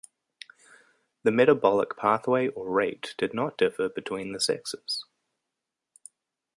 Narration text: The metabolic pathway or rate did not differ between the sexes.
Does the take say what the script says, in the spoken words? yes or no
yes